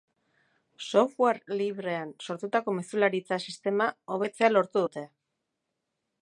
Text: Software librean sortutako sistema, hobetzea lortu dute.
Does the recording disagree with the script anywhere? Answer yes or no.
yes